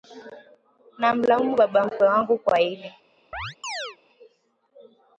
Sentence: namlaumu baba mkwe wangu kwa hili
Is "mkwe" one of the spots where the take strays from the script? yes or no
no